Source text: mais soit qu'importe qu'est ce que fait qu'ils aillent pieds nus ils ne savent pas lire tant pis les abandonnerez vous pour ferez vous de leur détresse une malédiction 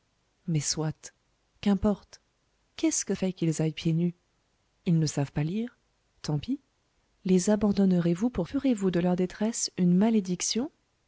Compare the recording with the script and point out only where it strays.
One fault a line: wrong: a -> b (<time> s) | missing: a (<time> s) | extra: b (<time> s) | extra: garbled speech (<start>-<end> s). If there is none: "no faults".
no faults